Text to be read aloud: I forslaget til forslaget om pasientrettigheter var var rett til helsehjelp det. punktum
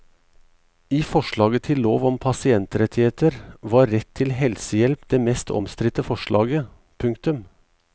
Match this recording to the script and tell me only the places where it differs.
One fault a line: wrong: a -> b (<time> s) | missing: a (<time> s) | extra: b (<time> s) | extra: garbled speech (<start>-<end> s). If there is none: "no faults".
wrong: forslaget -> lov (1.9 s)
missing: var (3.9 s)
extra: mest omstridte forslaget (5.2 s)